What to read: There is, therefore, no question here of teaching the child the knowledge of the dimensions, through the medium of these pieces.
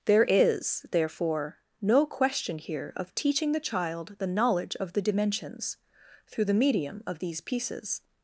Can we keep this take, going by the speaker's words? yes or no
yes